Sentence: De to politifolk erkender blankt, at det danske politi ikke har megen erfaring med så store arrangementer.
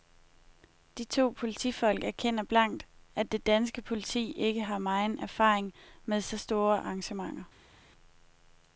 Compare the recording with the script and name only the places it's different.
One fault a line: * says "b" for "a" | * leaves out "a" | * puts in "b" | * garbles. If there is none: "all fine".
all fine